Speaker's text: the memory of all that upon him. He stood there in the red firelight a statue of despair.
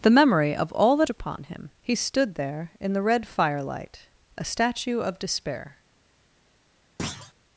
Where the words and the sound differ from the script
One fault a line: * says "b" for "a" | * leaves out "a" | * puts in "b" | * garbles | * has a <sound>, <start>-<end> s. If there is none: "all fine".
* has a thud, 7.0-7.3 s